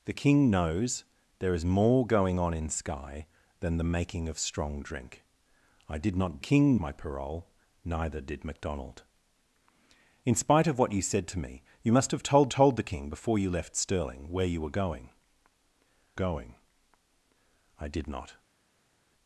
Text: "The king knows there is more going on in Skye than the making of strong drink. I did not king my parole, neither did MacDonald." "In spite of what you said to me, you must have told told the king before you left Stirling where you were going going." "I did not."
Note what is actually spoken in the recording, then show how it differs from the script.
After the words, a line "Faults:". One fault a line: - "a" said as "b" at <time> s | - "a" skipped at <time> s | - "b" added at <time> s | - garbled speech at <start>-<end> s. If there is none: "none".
"The king knows there is more going on in Skye than the making of strong drink. I did not king my parole, neither did MacDonald." "In spite of what you said to me, you must have told told the king before you left Stirling where you were going going." "I did not."
Faults:
none